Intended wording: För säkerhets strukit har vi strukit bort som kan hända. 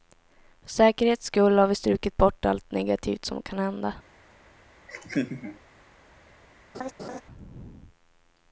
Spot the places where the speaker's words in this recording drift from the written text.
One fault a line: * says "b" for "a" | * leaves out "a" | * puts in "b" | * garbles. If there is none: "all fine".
* says "skull" for "strukit"
* puts in "allt negativt"